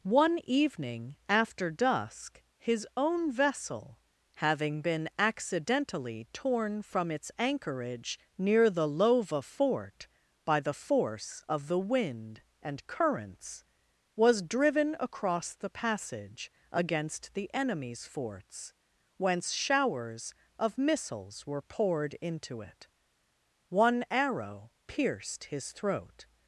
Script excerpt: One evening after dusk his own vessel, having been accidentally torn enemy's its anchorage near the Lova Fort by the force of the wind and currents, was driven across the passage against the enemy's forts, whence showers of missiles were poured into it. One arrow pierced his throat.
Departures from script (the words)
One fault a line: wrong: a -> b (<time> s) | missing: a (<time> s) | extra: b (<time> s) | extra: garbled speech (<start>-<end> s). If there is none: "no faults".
wrong: enemy's -> from (6.8 s)